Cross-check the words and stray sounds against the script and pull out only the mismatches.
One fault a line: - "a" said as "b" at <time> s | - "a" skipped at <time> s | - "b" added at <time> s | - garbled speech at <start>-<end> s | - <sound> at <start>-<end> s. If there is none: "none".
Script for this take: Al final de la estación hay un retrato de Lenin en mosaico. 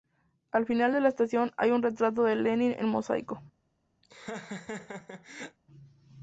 - laugh at 4.0-5.6 s